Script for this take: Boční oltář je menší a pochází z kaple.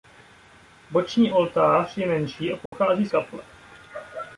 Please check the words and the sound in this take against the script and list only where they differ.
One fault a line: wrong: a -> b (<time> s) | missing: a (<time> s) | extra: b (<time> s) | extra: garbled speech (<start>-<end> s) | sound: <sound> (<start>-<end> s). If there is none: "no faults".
sound: dropout (2.7-2.7 s)